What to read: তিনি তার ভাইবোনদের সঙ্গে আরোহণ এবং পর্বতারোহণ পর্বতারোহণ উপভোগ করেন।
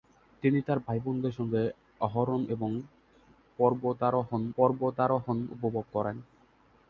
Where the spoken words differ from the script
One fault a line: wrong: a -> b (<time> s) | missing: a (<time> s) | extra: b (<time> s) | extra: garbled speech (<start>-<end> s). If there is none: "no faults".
no faults